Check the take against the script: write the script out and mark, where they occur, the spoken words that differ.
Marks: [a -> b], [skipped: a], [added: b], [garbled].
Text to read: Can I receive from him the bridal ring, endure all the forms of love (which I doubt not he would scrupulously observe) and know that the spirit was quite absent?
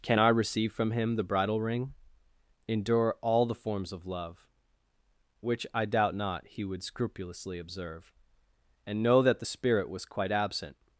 Can I receive from him the bridal ring, endure all the forms of love (which I doubt not he would scrupulously observe) and know that the spirit was quite absent?